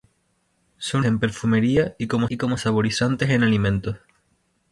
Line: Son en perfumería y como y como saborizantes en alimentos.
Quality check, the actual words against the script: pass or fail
pass